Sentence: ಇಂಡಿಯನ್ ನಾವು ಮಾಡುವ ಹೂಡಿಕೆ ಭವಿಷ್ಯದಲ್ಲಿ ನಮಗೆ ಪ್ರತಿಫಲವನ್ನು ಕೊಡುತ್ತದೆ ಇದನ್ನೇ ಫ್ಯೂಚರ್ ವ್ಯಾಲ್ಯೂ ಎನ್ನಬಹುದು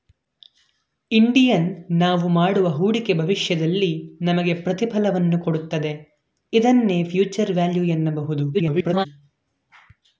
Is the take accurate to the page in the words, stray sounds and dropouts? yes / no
no